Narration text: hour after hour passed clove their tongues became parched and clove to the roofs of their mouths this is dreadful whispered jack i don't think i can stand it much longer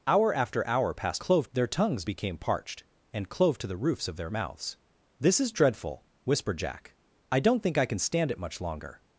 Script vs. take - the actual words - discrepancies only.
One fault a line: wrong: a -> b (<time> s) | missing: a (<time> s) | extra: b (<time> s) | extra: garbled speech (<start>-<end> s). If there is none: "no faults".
no faults